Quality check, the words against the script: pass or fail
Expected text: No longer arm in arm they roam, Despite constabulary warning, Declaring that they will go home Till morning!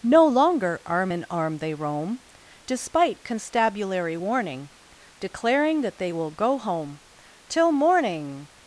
pass